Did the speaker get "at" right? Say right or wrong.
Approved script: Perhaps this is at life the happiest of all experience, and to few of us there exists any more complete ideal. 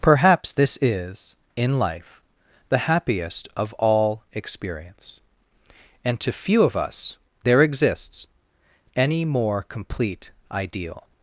wrong